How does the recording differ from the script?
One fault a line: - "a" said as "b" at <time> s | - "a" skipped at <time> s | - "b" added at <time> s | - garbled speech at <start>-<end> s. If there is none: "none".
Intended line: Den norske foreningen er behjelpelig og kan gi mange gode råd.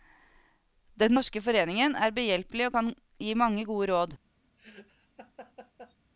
none